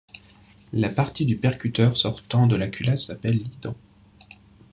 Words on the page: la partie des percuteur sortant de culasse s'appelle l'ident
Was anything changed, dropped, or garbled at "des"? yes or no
yes